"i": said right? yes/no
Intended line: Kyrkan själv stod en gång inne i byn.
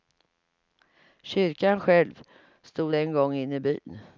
yes